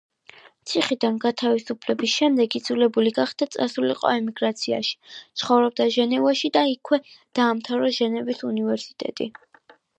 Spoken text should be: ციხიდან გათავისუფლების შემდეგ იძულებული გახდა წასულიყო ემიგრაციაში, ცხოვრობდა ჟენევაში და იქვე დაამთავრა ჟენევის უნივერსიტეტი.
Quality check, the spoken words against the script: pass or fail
pass